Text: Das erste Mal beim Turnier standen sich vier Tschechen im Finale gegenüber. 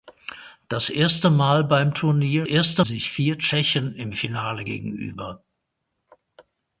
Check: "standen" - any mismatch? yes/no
yes